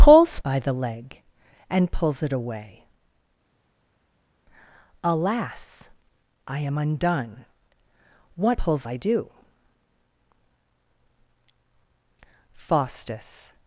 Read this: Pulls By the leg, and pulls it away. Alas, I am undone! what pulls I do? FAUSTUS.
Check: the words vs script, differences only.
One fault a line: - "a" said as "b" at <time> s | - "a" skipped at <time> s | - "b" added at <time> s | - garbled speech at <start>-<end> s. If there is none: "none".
none